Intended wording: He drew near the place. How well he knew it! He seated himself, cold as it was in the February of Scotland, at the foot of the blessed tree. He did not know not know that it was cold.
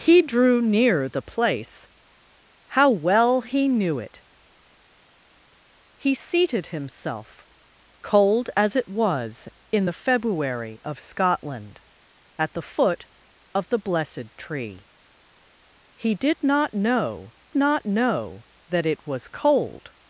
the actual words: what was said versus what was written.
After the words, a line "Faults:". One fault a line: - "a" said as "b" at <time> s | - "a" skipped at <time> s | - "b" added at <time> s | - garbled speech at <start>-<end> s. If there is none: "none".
He drew near the place. How well he knew it! He seated himself, cold as it was in the February of Scotland, at the foot of the blessed tree. He did not know not know that it was cold.
Faults:
none